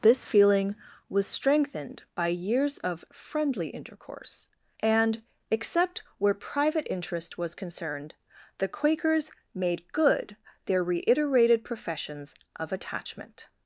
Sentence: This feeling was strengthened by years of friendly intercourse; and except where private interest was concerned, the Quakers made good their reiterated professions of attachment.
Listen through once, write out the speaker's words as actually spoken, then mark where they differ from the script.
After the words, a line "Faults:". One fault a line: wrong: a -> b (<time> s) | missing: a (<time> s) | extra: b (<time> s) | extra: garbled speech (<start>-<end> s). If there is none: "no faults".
This feeling was strengthened by years of friendly intercourse; and except where private interest was concerned, the Quakers made good their reiterated professions of attachment.
Faults:
no faults